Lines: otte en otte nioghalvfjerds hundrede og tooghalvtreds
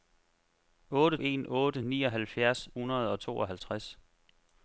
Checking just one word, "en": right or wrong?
right